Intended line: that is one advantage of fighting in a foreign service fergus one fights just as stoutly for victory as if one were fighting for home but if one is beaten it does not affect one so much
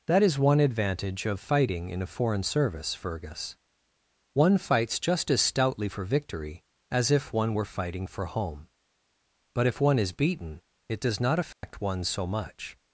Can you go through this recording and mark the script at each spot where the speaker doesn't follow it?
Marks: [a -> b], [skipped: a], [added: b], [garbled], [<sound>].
that is one advantage of fighting in a foreign service fergus one fights just as stoutly for victory as if one were fighting for home but if one is beaten it does not affect [dropout] one so much